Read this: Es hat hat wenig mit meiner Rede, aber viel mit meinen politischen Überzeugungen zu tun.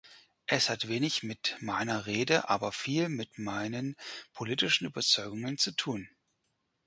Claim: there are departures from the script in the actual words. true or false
true